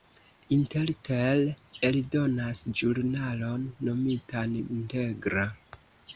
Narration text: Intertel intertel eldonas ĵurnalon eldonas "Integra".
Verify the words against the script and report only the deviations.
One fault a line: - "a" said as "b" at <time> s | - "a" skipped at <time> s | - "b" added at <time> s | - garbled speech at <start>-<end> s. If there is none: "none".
- "intertel" skipped at 1.4 s
- "eldonas" said as "nomitan" at 3.9 s